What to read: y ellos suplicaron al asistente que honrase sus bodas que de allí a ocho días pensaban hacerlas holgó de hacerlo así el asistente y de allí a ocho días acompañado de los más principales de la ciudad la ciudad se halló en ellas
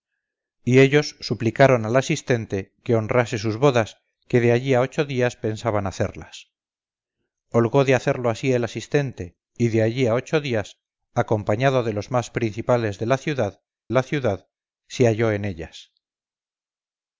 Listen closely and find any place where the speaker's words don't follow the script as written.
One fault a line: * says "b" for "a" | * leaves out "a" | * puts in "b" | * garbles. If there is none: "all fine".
all fine